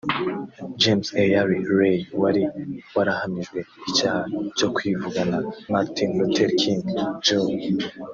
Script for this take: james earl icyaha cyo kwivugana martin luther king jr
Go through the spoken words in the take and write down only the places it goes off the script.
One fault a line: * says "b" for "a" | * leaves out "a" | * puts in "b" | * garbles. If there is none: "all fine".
* puts in "ray wari warahamijwe"